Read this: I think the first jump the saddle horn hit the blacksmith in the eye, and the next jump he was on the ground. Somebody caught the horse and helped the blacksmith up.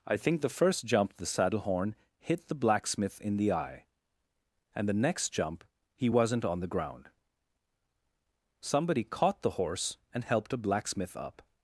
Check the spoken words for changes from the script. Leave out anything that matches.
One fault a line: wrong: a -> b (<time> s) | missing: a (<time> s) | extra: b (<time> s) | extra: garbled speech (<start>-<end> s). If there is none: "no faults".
wrong: was -> wasn't (6.1 s)
wrong: the -> a (10.5 s)